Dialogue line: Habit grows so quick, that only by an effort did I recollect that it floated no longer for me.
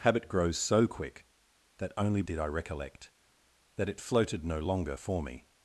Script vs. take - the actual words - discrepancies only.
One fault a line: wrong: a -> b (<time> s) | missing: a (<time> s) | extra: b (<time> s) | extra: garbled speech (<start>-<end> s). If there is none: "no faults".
missing: by an effort (2.2 s)